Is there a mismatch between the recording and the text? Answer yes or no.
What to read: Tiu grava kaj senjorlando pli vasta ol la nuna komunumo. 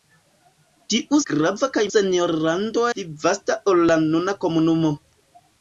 no